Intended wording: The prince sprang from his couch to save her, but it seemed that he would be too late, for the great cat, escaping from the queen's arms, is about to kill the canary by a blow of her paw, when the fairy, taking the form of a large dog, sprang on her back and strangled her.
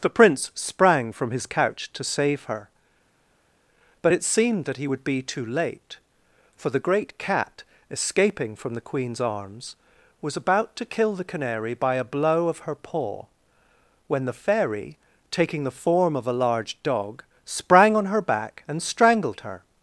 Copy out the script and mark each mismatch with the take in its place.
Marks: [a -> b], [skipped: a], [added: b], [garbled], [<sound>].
The prince sprang from his couch to save her, but it seemed that he would be too late, for the great cat, escaping from the queen's arms, [is -> was] about to kill the canary by a blow of her paw, when the fairy, taking the form of a large dog, sprang on her back and strangled her.